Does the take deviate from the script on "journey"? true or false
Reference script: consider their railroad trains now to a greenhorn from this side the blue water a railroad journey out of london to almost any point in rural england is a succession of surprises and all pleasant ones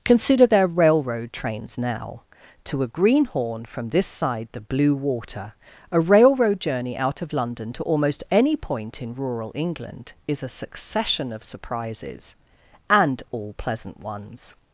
false